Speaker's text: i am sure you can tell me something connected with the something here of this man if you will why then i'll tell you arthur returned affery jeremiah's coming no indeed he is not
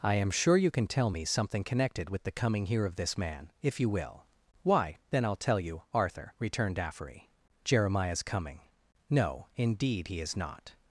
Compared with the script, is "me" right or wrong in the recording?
right